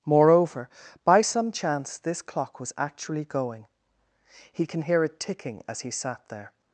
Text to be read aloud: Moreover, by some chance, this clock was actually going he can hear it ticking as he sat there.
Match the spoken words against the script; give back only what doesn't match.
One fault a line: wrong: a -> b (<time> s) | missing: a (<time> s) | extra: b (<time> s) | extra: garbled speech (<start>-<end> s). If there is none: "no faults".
no faults